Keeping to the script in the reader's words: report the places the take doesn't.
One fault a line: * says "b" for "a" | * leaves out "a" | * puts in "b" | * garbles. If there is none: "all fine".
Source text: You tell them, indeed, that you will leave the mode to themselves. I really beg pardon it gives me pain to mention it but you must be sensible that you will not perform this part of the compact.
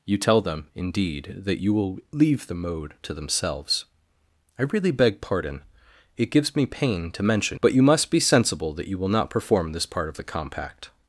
* leaves out "it"